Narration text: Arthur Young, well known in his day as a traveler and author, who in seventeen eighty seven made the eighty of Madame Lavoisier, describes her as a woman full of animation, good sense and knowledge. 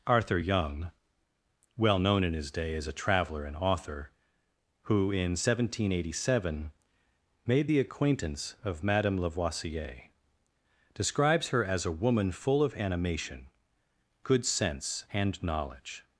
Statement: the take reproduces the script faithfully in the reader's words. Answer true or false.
false